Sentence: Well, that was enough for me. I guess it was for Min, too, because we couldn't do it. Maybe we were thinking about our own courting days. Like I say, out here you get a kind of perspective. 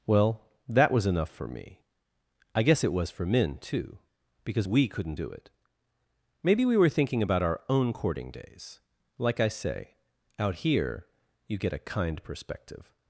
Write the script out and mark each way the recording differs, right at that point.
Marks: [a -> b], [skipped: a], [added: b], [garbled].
Well, that was enough for me. I guess it was for Min, too, because we couldn't do it. Maybe we were thinking about our own courting days. Like I say, out here you get a kind [skipped: of] perspective.